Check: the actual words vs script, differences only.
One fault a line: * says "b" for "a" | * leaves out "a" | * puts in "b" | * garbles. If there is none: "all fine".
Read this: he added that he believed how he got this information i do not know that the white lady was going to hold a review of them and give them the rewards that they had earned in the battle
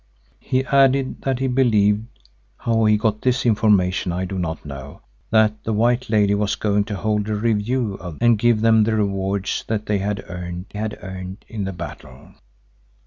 * leaves out "them"
* puts in "had earned"